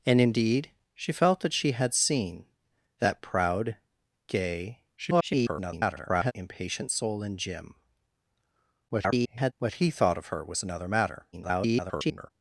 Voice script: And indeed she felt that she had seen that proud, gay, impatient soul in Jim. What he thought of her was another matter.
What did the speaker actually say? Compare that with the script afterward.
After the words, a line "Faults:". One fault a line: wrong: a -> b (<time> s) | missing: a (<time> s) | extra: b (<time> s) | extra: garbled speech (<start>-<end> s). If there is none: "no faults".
And indeed she felt that she had seen that proud, gay, [garbled] impatient soul in Jim. [garbled] What he thought of her was another matter. [garbled]
Faults:
extra: garbled speech (5.0-6.3 s)
extra: garbled speech (8.9-9.5 s)
extra: garbled speech (11.3-12.3 s)